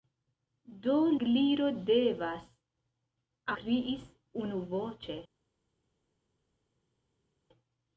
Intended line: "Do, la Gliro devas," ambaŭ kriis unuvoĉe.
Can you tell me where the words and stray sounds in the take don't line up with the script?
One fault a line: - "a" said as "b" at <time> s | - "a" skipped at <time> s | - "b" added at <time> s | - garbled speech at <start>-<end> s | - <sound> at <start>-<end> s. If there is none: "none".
- "la" skipped at 0.9 s
- "ambaŭ" skipped at 2.5 s